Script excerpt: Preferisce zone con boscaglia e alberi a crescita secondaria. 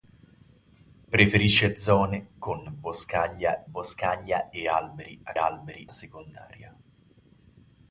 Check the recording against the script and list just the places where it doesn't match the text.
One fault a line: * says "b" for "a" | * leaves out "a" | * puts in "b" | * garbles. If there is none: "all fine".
* puts in "boscaglia"
* says "alberi" for "crescita"